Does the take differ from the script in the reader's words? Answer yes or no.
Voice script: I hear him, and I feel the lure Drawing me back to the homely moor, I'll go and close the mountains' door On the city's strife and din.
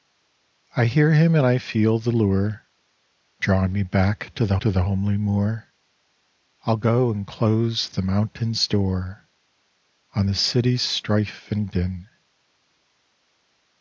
yes